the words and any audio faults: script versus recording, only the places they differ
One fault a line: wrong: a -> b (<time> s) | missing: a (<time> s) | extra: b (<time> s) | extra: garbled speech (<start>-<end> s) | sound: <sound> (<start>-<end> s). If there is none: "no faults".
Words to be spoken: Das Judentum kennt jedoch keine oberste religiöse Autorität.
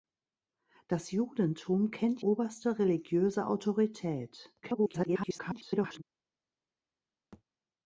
missing: jedoch keine (2.2 s)
extra: garbled speech (4.6-6.0 s)
sound: thud (7.3-7.4 s)